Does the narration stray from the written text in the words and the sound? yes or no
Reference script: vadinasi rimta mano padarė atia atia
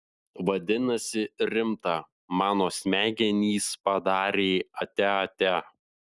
yes